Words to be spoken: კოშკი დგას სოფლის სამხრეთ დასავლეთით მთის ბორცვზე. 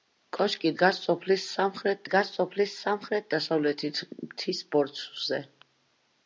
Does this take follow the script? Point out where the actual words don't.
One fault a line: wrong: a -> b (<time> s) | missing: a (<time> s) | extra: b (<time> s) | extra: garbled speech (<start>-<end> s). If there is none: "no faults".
extra: დგას სოფლის სამხრეთ (2.1 s)